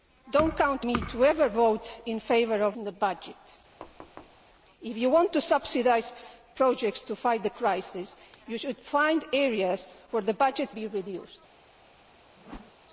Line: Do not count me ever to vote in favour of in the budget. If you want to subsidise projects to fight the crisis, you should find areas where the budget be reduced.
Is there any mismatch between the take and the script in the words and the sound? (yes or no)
yes